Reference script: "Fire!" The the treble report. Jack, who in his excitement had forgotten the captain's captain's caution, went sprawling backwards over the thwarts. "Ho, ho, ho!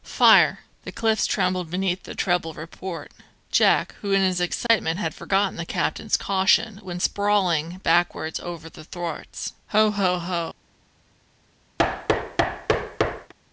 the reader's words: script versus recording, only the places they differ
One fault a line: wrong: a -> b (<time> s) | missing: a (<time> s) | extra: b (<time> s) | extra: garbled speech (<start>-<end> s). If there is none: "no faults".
extra: cliffs trembled beneath (0.9 s)
missing: captain's (6.2 s)